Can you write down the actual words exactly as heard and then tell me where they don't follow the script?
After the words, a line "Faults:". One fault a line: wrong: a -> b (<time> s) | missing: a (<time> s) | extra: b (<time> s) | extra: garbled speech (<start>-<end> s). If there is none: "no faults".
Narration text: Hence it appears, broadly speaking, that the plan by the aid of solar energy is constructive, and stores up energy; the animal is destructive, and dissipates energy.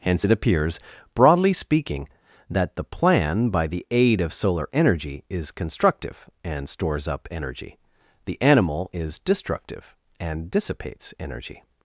Hence it appears, broadly speaking, that the plan by the aid of solar energy is constructive, and stores up energy; the animal is destructive, and dissipates energy.
Faults:
no faults